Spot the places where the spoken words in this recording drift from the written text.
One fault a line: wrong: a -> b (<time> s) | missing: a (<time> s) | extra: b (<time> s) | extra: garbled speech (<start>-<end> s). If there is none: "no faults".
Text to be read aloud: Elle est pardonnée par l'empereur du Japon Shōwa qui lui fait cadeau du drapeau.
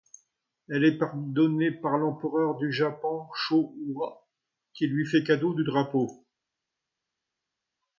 no faults